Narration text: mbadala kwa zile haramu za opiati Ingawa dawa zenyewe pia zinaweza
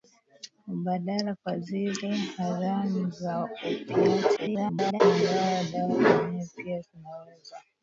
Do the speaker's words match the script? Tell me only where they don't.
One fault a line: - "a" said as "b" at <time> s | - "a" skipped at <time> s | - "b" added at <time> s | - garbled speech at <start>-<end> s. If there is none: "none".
- garbled speech at 4.4-5.0 s